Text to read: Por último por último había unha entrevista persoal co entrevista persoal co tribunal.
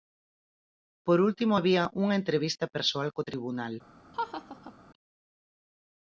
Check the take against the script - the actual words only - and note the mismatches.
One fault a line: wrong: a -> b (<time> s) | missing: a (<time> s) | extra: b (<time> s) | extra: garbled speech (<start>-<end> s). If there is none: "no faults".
missing: por último (1.5 s)
missing: entrevista persoal co (3.3 s)